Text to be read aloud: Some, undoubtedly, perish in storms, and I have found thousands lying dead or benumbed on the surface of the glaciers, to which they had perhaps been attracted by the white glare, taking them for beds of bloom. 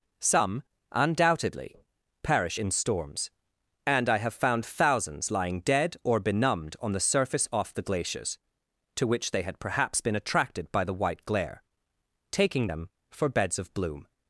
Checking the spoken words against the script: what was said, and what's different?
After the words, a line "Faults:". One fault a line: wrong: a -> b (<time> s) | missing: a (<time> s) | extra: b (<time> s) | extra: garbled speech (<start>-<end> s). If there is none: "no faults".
Some, undoubtedly, perish in storms, and I have found thousands lying dead or benumbed on the surface off the glaciers, to which they had perhaps been attracted by the white glare, taking them for beds of bloom.
Faults:
wrong: of -> off (7.5 s)